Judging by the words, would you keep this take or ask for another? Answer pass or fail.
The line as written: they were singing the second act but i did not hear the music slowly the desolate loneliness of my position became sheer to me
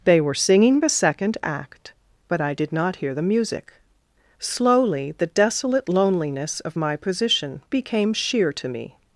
pass